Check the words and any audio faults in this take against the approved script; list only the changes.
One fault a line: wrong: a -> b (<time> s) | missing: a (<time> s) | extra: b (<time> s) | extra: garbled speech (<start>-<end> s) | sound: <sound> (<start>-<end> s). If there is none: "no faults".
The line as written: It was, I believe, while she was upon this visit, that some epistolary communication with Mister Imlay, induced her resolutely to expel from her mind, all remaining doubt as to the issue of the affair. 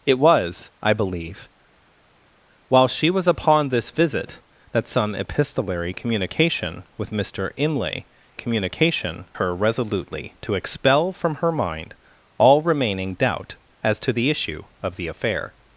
wrong: induced -> communication (8.3 s)